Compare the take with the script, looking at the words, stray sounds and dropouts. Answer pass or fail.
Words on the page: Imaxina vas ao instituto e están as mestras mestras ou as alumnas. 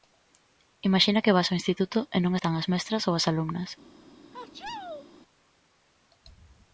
fail